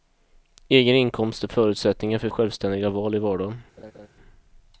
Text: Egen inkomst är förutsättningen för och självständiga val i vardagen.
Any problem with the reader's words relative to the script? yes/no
no